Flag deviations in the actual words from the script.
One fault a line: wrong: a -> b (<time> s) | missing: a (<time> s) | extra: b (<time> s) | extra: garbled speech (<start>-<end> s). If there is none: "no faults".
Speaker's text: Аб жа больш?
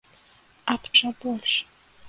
no faults